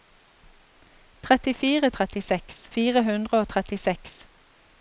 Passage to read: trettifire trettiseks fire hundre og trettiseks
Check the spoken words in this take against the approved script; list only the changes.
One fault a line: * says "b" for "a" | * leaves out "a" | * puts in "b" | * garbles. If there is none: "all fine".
all fine